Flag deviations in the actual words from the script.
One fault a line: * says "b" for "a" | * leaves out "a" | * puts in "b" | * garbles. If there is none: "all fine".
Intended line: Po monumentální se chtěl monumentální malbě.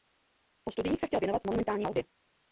* says "studiích" for "monumentální"
* puts in "věnovat"